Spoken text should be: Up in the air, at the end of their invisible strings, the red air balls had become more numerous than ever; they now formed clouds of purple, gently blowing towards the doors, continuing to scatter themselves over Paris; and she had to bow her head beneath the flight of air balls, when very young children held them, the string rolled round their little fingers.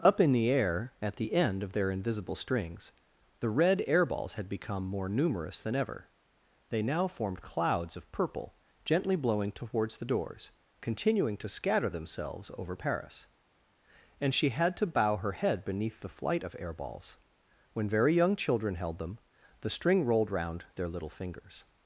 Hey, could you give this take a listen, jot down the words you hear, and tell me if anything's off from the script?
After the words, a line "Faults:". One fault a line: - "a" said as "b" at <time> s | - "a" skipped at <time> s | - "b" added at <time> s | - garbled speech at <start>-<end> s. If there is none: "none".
Up in the air, at the end of their invisible strings, the red air balls had become more numerous than ever; they now formed clouds of purple, gently blowing towards the doors, continuing to scatter themselves over Paris; and she had to bow her head beneath the flight of air balls, when very young children held them, the string rolled round their little fingers.
Faults:
none